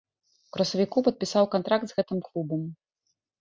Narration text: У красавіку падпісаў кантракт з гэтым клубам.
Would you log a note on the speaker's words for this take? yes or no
no